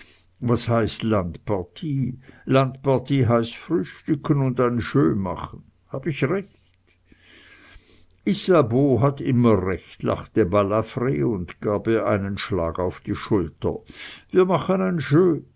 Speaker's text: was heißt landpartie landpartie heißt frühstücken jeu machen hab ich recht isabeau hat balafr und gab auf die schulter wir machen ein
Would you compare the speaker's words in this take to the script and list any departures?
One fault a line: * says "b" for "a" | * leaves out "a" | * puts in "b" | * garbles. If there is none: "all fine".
* puts in "und ein"
* puts in "immer recht lachte"
* puts in "ihr einen schlag"